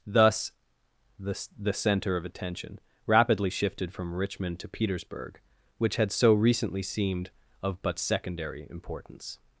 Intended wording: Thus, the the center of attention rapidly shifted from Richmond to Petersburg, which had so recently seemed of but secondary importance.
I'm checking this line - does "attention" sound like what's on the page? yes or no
yes